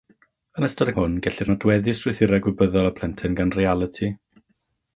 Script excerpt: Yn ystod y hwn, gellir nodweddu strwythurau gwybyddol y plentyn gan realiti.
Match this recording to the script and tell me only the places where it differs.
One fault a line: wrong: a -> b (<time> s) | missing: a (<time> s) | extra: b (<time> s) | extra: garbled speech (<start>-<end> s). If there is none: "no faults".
no faults